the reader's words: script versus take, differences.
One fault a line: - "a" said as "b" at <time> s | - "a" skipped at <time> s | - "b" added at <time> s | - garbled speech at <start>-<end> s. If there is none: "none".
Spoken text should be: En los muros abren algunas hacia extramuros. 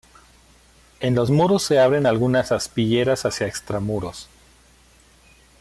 - "se" added at 1.6 s
- "aspilleras" added at 2.5 s